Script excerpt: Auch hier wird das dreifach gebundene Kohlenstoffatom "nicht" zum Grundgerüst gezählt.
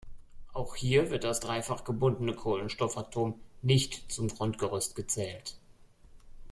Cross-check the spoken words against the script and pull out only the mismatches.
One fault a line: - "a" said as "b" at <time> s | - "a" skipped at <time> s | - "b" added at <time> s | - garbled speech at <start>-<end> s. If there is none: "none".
none